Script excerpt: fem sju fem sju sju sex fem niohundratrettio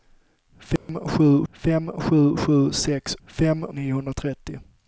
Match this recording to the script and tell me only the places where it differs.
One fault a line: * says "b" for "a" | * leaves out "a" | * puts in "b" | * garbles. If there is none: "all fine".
all fine